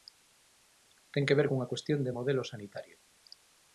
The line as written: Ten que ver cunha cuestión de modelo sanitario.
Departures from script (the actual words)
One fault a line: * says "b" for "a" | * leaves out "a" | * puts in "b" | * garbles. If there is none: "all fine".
all fine